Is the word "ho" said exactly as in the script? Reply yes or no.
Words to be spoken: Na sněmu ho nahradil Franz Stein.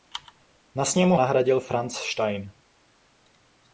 no